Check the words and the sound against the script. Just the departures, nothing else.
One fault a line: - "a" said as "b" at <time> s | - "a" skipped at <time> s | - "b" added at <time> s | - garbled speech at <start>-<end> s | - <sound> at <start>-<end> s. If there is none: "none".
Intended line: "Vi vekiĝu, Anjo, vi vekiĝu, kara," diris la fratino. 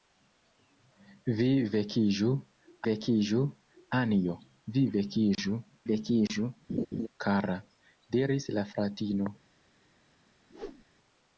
- "vekiĝu" added at 2.9 s
- "vekiĝu" added at 5.9 s
- laugh at 6.7-7.1 s
- whoosh at 10.5-10.8 s